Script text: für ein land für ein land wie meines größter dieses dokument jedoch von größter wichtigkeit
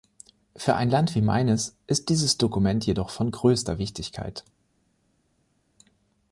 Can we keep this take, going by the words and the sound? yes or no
no